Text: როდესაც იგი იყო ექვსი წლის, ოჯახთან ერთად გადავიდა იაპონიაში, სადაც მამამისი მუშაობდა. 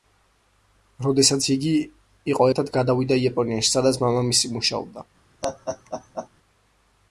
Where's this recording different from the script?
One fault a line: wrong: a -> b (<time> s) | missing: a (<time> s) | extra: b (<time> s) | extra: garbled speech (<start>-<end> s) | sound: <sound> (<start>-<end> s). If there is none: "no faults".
missing: ექვსი წლის ოჯახთან (2.5 s)
sound: laugh (5.4-6.3 s)